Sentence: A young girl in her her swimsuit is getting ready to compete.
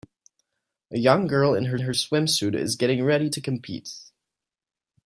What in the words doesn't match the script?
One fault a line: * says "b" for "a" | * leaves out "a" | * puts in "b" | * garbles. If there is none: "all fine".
all fine